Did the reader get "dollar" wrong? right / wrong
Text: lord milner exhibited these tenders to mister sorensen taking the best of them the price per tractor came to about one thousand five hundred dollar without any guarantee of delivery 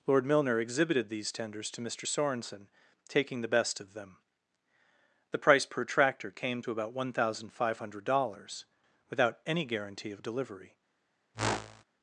wrong